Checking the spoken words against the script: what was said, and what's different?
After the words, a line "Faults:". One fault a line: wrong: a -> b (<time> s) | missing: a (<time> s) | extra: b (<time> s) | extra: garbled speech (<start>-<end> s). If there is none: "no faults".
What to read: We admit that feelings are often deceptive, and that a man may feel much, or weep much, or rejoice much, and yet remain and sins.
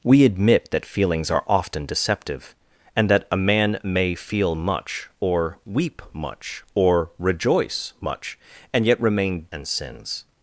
We admit that feelings are often deceptive, and that a man may feel much, or weep much, or rejoice much, and yet remain and sins.
Faults:
no faults